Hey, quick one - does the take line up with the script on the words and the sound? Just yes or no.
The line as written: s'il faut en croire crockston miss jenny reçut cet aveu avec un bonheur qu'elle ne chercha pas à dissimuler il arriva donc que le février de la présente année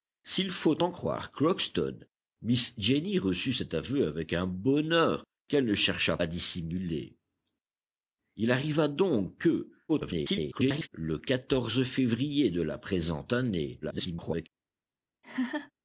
no